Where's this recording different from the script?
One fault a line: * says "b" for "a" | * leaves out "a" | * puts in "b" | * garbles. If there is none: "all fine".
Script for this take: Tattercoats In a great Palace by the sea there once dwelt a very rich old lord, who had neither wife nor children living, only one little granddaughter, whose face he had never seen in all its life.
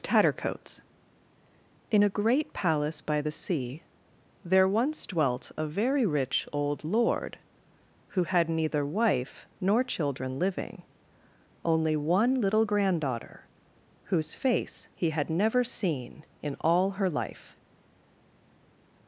* says "her" for "its"